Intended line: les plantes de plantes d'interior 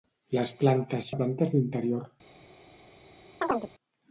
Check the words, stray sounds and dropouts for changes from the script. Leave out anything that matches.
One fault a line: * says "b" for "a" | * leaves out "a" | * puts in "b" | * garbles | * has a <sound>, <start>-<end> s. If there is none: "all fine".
* has a chirp, 3.4-3.7 s